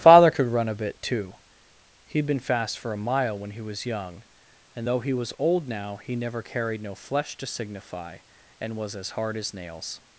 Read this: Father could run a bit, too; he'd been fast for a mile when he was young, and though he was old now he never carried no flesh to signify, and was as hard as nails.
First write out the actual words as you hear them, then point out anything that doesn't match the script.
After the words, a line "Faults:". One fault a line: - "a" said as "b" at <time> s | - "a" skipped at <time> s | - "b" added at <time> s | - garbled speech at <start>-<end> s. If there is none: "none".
Father could run a bit, too; he'd been fast for a mile when he was young, and though he was old now he never carried no flesh to signify, and was as hard as nails.
Faults:
none